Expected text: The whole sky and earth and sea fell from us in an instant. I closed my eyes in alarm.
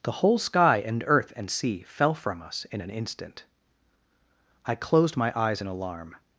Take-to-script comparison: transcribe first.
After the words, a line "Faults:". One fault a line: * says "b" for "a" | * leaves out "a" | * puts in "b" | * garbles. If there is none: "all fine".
The whole sky and earth and sea fell from us in an instant. I closed my eyes in alarm.
Faults:
all fine